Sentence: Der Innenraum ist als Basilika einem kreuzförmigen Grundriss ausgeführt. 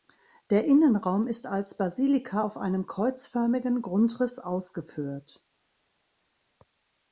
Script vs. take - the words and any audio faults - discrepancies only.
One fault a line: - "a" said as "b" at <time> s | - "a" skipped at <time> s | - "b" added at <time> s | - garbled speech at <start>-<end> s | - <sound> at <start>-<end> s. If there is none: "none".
- "auf" added at 2.4 s